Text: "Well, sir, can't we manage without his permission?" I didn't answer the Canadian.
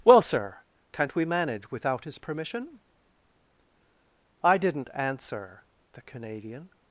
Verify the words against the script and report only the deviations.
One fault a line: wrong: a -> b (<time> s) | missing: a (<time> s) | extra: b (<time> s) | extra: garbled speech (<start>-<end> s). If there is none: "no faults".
no faults